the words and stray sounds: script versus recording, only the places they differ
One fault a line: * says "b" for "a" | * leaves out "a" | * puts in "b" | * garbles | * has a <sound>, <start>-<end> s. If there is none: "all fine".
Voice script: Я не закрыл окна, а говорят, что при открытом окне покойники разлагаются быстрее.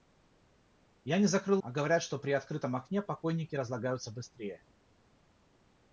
* leaves out "окна"